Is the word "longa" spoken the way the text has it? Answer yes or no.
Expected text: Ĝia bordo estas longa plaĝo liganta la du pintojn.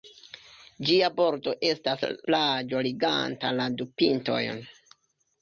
no